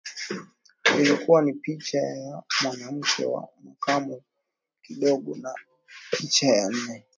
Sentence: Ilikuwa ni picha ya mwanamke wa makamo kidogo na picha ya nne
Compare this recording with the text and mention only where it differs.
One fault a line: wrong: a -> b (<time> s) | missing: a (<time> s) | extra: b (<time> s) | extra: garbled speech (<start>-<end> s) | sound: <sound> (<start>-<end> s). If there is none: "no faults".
no faults